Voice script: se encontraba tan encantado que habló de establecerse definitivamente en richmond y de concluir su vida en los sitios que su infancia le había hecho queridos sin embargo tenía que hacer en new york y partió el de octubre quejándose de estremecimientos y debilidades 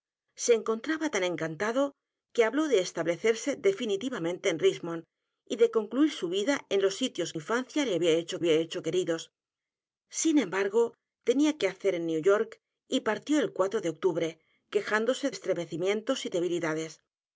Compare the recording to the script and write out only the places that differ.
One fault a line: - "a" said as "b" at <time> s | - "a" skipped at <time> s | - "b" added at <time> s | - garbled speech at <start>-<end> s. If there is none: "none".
- "que su" skipped at 7.3 s
- "había hecho" added at 8.4 s
- "de" skipped at 15.3 s